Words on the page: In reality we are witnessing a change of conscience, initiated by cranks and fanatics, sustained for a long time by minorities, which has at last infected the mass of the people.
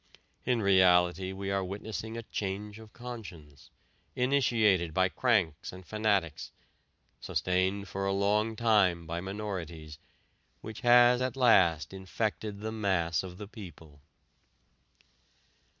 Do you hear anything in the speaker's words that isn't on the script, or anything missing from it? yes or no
no